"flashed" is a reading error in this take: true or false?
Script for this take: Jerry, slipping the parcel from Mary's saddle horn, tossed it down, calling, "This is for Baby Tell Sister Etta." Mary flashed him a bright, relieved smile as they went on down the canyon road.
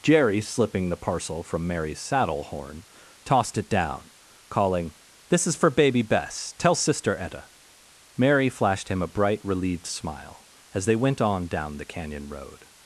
false